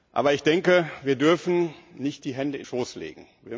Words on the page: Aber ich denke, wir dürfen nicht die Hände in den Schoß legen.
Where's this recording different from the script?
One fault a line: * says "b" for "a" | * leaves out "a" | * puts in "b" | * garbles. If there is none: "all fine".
* leaves out "den"